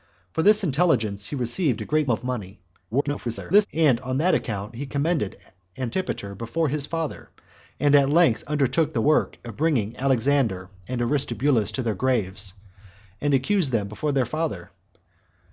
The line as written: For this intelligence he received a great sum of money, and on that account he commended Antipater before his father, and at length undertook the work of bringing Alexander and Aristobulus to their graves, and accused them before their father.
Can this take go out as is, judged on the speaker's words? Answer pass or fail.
fail